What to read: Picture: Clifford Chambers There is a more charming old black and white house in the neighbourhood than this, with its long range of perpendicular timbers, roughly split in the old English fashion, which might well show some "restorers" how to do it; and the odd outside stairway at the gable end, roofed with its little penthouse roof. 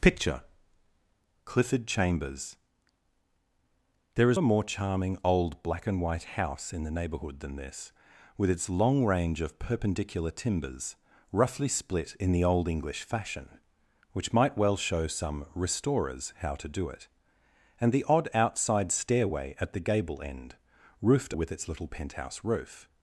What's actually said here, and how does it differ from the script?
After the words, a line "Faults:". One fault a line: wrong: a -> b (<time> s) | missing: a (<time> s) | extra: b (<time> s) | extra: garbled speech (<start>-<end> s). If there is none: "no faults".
Picture: Clifford Chambers There is a more charming old black and white house in the neighbourhood than this, with its long range of perpendicular timbers, roughly split in the old English fashion, which might well show some "restorers" how to do it; and the odd outside stairway at the gable end, roofed with its little penthouse roof.
Faults:
no faults